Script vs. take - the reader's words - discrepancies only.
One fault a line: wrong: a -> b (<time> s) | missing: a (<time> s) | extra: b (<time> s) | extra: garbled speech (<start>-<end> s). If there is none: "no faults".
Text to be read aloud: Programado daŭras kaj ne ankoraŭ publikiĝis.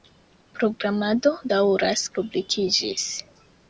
missing: kaj ne ankoraŭ (2.1 s)